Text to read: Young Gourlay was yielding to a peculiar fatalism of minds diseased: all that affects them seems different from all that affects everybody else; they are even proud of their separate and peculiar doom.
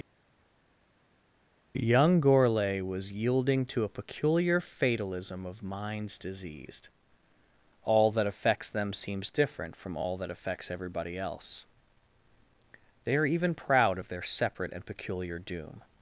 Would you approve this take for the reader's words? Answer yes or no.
yes